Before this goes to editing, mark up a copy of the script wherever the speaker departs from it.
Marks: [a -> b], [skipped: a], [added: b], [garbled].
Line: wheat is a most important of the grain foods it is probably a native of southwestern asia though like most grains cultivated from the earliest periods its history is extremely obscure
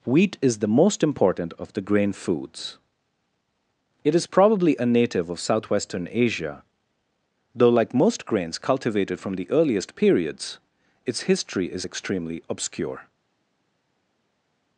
wheat is [a -> the] most important of the grain foods it is probably a native of southwestern asia though like most grains cultivated from the earliest periods its history is extremely obscure